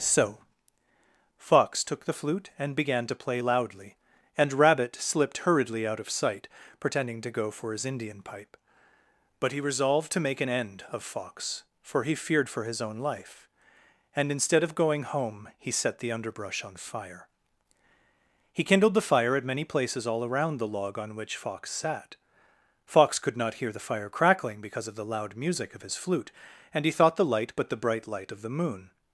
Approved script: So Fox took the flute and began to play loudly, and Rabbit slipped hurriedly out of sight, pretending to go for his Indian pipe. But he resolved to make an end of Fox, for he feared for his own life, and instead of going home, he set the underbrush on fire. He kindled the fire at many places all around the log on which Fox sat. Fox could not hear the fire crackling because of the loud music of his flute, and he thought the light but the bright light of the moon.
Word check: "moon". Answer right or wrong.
right